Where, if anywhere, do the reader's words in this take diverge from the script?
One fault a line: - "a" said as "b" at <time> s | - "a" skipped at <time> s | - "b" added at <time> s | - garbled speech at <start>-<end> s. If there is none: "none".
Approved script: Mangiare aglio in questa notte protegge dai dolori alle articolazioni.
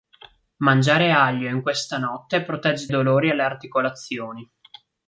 - "dai" skipped at 2.9 s